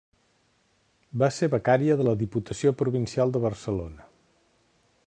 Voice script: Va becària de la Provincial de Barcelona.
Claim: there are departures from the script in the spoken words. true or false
true